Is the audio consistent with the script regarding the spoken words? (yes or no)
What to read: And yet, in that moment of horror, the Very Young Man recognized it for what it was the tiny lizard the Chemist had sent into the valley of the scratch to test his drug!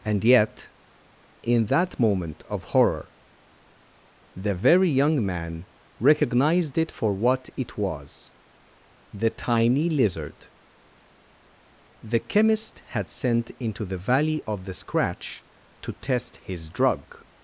yes